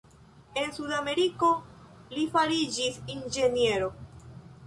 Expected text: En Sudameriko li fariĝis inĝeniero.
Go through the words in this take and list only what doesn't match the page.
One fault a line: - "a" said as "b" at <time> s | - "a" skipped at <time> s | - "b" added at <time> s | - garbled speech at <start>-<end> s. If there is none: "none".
none